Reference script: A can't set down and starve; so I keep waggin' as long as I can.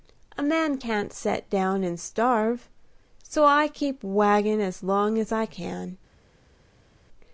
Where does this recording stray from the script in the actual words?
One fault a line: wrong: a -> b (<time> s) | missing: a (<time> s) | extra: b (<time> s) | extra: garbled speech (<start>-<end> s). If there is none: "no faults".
extra: man (0.4 s)